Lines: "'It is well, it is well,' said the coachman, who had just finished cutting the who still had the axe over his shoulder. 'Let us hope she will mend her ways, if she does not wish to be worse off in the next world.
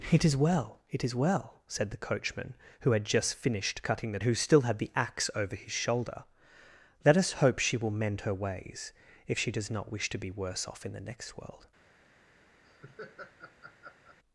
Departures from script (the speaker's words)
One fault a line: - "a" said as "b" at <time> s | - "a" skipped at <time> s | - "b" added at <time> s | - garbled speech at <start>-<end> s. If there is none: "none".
none